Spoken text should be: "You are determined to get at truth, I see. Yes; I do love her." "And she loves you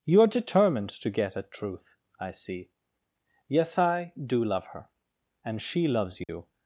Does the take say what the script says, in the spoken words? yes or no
yes